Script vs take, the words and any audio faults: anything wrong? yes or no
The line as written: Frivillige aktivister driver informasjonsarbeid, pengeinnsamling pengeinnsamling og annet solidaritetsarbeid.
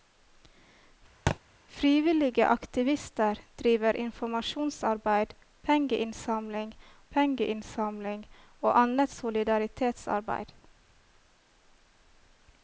yes